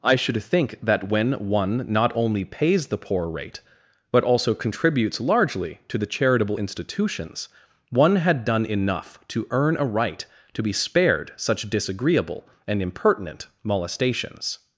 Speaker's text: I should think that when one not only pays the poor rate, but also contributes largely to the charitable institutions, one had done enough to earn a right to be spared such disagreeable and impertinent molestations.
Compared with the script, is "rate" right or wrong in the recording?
right